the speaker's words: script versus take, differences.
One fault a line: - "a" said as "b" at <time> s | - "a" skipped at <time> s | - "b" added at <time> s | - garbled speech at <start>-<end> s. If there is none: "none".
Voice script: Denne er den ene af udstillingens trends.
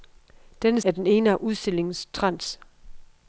none